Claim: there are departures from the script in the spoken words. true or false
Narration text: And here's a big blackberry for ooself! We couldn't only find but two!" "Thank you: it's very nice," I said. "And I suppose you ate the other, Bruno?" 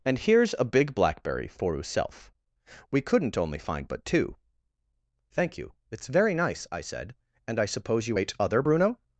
true